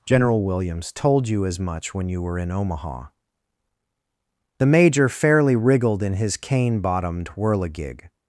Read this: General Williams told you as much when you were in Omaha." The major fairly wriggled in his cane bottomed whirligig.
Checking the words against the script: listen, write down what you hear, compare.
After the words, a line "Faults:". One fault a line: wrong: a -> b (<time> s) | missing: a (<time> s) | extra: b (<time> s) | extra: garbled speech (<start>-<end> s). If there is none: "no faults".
General Williams told you as much when you were in Omaha." The major fairly wriggled in his cane bottomed whirligig.
Faults:
no faults